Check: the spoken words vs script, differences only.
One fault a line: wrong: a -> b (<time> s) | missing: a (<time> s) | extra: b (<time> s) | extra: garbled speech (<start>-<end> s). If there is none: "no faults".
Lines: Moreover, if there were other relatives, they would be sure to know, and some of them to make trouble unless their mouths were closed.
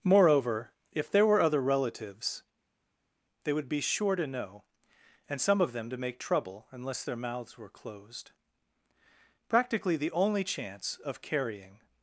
extra: Practically the only chance of carrying (9.5 s)